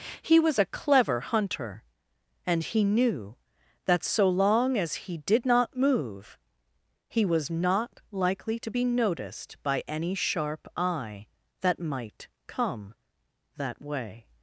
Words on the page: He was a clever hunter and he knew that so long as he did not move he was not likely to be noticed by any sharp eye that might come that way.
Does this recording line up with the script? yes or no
yes